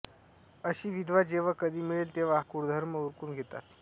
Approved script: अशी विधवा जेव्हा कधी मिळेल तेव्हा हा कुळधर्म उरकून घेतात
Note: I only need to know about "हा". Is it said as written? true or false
false